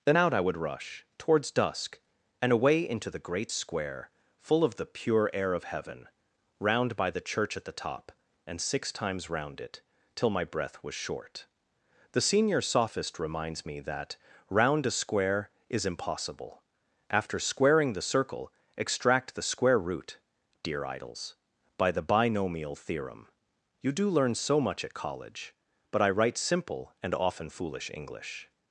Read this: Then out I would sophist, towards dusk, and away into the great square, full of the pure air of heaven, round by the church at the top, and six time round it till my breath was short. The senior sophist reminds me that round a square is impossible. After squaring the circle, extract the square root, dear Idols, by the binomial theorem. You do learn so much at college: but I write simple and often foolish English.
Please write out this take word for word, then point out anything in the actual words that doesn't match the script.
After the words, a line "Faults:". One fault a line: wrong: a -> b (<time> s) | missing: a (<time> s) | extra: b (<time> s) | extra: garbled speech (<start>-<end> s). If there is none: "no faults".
Then out I would rush, towards dusk, and away into the great square, full of the pure air of heaven, round by the church at the top, and six times round it till my breath was short. The senior sophist reminds me that round a square is impossible. After squaring the circle, extract the square root, dear Idols, by the binomial theorem. You do learn so much at college: but I write simple and often foolish English.
Faults:
wrong: sophist -> rush (0.6 s)
wrong: time -> times (8.9 s)